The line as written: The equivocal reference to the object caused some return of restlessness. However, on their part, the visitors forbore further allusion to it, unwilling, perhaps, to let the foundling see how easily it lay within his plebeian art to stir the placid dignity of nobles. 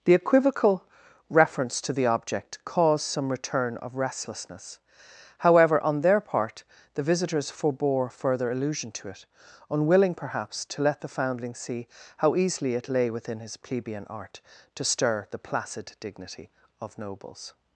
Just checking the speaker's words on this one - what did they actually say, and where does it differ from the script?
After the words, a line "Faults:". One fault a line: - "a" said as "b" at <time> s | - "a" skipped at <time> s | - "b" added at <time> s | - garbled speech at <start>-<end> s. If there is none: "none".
The equivocal reference to the object caused some return of restlessness. However, on their part, the visitors forbore further allusion to it, unwilling, perhaps, to let the foundling see how easily it lay within his plebeian art to stir the placid dignity of nobles.
Faults:
none